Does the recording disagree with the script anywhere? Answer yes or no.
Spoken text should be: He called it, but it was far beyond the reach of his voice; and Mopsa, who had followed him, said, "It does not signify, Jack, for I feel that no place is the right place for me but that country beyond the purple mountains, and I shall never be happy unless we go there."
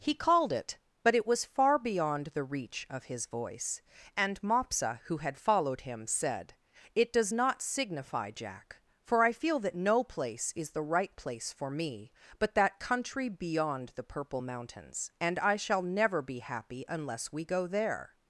no